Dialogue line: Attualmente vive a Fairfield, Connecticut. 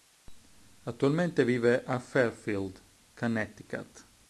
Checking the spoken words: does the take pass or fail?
pass